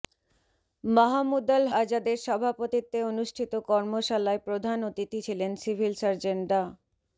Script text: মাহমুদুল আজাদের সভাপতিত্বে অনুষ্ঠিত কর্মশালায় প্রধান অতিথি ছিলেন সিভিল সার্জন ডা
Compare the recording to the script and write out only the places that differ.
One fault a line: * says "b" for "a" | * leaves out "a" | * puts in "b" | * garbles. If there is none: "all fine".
all fine